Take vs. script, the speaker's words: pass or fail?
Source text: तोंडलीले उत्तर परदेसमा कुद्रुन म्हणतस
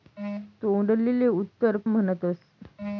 fail